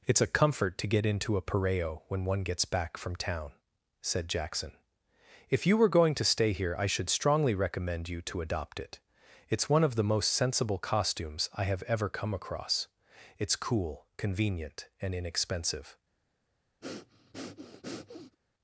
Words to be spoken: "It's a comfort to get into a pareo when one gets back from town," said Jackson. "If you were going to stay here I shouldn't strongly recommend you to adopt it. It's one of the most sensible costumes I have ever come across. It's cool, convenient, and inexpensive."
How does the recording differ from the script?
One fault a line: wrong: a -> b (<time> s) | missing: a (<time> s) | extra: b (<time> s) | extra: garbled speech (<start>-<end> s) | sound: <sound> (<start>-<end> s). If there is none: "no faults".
wrong: shouldn't -> should (6.9 s)
sound: breath (16.8-18.4 s)